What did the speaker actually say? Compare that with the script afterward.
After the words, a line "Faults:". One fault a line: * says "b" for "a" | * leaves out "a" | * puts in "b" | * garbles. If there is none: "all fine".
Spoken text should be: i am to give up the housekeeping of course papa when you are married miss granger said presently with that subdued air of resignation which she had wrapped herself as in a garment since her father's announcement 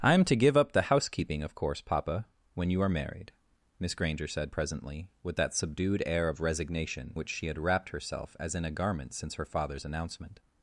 i am to give up the housekeeping of course papa when you are married miss granger said presently with that subdued air of resignation which she had wrapped herself as in a garment since her father's announcement
Faults:
all fine